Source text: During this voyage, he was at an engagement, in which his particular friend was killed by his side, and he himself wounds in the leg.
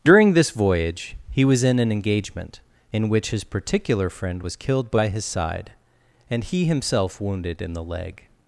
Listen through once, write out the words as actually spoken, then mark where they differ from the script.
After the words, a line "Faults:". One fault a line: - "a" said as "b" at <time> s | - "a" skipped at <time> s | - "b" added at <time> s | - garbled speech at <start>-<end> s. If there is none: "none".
During this voyage, he was in an engagement, in which his particular friend was killed by his side, and he himself wounded in the leg.
Faults:
- "at" said as "in" at 1.6 s
- "wounds" said as "wounded" at 7.2 s